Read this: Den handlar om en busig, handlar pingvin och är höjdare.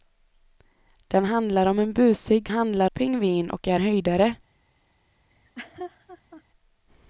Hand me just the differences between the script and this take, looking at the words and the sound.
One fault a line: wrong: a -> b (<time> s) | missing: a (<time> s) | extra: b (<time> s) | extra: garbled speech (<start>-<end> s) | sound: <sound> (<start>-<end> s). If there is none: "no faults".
sound: laugh (5.3-6.4 s)